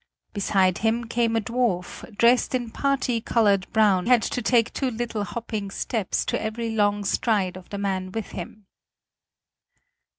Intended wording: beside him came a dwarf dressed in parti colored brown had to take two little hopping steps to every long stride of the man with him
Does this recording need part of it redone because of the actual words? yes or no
no